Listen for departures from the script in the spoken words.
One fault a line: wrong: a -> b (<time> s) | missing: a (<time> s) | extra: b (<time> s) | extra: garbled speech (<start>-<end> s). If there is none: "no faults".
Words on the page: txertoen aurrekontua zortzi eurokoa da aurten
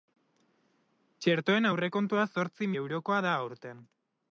no faults